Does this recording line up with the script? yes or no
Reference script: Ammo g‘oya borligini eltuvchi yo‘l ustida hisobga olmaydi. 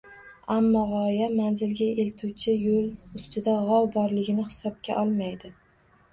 no